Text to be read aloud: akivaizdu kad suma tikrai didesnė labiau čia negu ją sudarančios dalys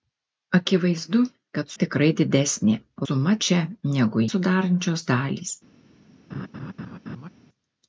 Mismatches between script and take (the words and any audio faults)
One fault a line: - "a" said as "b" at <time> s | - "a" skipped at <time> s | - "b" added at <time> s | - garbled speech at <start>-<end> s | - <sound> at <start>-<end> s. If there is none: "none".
- "suma" skipped at 1.7 s
- "labiau" said as "suma" at 3.0 s
- "ją" skipped at 4.2 s
- laugh at 6.3-7.3 s